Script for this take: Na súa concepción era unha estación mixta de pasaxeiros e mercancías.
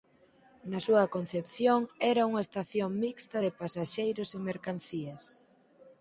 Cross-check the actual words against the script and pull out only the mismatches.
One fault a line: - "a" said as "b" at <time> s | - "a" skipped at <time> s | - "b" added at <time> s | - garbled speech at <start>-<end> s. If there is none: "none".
none